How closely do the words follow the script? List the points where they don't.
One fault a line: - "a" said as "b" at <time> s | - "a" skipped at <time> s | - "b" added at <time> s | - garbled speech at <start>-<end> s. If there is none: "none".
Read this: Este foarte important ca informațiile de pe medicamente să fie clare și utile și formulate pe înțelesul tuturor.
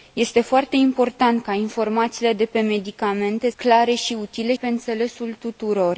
- "să fie" skipped at 3.5 s
- "și formulate" skipped at 4.5 s